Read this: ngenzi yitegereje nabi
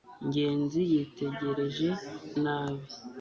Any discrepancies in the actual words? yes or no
no